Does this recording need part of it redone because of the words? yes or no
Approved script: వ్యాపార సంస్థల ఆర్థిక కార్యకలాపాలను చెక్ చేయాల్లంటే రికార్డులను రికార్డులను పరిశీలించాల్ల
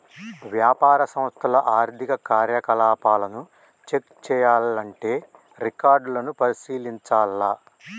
yes